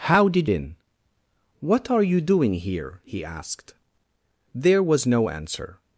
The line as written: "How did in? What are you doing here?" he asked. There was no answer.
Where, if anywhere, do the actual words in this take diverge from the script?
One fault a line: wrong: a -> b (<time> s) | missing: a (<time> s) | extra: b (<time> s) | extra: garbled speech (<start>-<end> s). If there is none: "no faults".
no faults